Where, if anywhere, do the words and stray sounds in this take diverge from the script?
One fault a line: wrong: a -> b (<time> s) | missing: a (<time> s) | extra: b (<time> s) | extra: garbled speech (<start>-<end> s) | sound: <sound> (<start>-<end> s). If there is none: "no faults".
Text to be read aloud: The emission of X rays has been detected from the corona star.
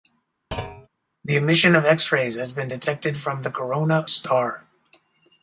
sound: thud (0.5-0.9 s)